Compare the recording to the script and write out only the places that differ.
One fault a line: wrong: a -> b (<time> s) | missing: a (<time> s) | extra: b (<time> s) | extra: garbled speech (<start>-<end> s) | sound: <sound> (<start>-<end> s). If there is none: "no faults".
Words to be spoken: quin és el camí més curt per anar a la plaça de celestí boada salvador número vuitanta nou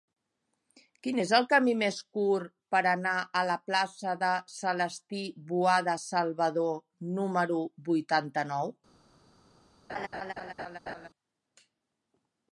sound: laugh (9.9-11.1 s)